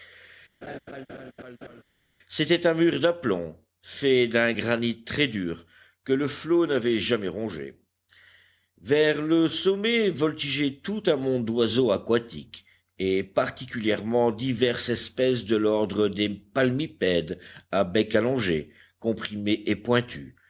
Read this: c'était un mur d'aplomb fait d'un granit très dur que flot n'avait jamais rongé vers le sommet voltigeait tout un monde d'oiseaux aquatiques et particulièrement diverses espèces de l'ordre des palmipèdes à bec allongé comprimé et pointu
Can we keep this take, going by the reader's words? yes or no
no